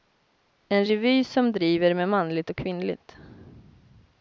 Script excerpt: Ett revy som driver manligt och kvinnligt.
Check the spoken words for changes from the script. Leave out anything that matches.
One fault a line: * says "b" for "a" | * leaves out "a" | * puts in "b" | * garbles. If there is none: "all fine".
* says "En" for "Ett"
* puts in "med"